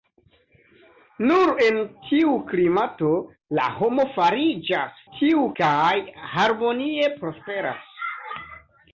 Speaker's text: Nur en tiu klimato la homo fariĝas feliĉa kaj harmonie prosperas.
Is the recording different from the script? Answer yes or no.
yes